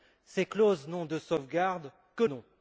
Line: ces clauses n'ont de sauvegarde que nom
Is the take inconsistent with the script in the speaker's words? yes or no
no